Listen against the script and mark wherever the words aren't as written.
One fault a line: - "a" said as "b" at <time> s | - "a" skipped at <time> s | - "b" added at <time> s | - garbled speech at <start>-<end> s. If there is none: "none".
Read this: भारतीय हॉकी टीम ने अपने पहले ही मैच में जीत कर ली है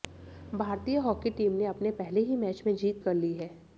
none